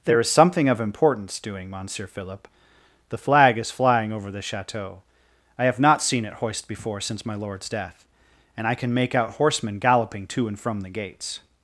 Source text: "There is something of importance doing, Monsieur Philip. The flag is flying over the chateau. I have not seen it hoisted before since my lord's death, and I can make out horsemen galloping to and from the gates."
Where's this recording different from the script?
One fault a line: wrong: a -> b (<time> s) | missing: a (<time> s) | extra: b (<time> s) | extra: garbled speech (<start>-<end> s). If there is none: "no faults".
wrong: hoisted -> hoist (6.3 s)